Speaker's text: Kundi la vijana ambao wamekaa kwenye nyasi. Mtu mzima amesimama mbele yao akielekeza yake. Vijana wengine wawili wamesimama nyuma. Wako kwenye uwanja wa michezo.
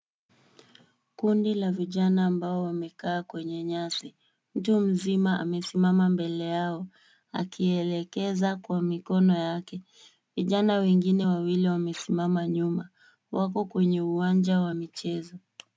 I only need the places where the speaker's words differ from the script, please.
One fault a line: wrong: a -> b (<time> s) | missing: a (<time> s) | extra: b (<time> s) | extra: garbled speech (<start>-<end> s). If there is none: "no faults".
extra: kwa mikono (8.6 s)